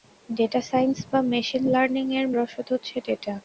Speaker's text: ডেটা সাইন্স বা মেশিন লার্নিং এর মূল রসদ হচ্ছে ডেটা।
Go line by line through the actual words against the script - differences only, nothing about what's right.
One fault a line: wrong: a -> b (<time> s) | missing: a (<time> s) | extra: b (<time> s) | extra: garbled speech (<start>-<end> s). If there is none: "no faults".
missing: মূল (2.3 s)